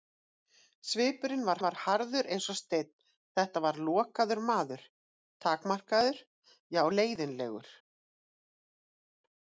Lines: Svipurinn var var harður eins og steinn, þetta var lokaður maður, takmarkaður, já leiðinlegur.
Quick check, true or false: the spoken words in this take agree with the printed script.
true